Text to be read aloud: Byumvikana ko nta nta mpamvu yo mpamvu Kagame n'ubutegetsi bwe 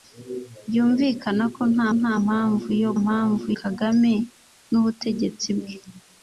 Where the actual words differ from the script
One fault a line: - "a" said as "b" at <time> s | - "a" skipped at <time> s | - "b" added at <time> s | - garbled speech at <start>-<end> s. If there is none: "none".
none